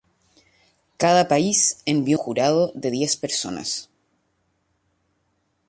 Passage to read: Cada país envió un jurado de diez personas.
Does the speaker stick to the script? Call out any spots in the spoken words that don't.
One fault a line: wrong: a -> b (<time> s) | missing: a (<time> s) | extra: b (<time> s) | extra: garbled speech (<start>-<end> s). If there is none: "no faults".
missing: un (2.2 s)